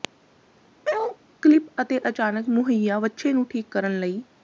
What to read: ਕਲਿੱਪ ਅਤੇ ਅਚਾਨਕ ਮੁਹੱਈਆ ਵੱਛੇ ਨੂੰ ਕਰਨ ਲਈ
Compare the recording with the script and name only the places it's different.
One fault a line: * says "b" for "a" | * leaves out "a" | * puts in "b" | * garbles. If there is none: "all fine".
* puts in "ਠੀਕ"